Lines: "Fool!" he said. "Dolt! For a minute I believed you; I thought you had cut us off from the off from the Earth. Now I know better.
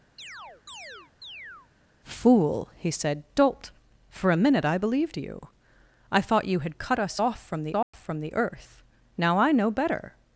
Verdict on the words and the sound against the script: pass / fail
fail